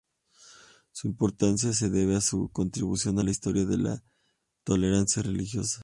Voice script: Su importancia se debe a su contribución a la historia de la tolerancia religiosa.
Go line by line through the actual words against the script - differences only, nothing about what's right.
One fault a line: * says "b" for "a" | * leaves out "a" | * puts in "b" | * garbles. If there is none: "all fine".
all fine